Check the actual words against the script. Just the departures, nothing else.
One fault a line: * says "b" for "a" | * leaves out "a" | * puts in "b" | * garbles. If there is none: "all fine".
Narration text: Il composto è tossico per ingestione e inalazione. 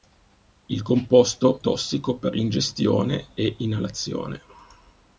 * leaves out "è"